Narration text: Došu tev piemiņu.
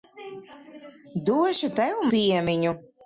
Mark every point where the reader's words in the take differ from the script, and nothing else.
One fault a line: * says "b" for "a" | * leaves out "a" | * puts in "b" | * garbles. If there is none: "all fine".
all fine